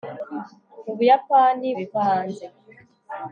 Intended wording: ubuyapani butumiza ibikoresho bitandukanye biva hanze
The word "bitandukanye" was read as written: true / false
false